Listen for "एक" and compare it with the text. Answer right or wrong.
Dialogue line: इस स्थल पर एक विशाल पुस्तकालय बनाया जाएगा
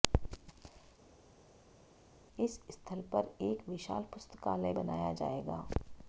right